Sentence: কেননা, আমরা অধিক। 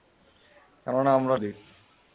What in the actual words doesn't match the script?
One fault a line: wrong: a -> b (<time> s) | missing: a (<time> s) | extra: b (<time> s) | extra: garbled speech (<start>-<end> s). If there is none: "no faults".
no faults